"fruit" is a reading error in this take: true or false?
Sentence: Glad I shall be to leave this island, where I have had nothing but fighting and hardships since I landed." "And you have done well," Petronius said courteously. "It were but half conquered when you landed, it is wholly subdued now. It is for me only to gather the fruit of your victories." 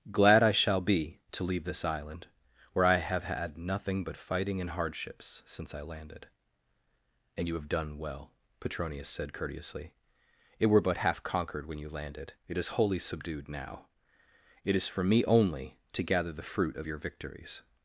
false